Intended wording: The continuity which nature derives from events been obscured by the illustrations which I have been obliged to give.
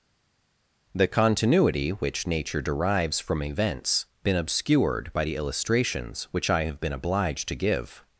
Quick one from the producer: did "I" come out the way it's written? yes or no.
yes